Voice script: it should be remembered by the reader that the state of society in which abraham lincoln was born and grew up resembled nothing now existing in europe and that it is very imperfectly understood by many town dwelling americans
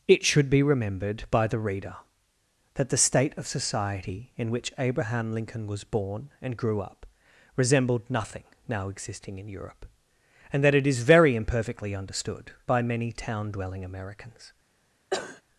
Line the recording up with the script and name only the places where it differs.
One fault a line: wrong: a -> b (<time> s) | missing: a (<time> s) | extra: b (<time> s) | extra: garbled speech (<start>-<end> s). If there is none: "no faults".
no faults